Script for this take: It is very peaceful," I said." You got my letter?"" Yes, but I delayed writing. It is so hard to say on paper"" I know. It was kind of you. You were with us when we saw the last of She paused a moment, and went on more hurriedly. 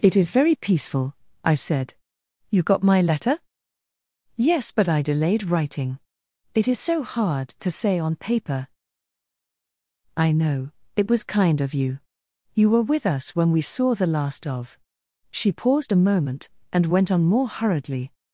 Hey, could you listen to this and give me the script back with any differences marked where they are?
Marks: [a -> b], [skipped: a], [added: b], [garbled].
It is very peaceful," I said." You got my letter?"" Yes, but I delayed writing. It is so hard to say on paper"" I know. It was kind of you. You were with us when we saw the last of She paused a moment, and went on more hurriedly.